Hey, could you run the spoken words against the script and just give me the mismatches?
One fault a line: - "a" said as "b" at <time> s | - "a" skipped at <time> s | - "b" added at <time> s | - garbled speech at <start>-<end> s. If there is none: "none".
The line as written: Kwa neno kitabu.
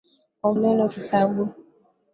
none